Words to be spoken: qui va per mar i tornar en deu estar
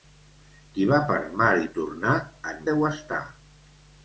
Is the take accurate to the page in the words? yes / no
yes